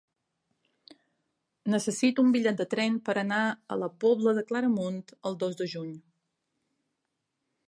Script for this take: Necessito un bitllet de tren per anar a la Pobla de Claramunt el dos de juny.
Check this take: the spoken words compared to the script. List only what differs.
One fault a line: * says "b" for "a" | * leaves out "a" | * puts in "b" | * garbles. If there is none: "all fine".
all fine